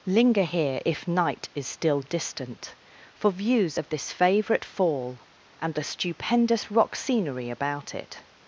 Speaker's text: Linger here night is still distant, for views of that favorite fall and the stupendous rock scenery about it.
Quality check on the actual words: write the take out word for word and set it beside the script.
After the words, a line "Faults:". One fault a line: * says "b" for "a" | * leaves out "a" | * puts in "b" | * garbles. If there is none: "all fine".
Linger here if night is still distant, for views of this favorite fall and the stupendous rock scenery about it.
Faults:
* puts in "if"
* says "this" for "that"